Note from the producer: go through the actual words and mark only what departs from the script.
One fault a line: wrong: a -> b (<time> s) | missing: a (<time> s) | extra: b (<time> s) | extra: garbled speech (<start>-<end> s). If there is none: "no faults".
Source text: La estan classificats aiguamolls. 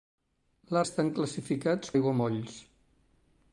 no faults